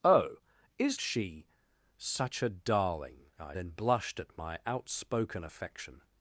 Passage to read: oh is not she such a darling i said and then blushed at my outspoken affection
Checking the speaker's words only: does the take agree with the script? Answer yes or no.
no